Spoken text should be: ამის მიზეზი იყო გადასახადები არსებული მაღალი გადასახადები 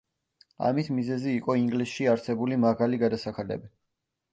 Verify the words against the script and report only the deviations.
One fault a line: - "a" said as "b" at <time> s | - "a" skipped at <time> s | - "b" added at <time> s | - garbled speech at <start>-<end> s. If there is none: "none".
- "გადასახადები" said as "ინგლისში" at 1.6 s